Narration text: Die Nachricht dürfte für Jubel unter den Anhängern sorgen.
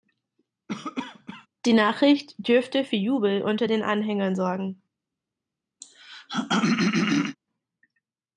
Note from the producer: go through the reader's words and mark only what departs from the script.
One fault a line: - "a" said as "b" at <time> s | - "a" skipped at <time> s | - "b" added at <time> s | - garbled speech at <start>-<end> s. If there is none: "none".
none